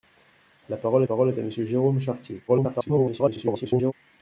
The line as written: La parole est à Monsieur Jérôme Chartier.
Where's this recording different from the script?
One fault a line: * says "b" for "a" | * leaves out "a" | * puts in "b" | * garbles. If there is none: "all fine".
* puts in "parole"
* garbles